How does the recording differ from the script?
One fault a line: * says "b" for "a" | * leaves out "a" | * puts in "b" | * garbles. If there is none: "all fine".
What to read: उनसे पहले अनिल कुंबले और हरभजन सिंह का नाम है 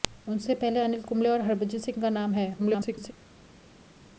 * garbles